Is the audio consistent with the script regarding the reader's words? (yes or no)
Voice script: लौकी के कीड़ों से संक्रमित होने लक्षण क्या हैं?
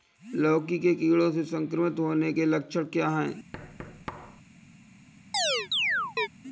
no